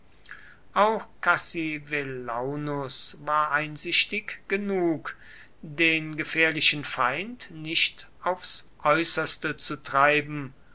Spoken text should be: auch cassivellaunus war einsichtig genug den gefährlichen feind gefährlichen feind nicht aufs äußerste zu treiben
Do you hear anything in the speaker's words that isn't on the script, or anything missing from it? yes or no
yes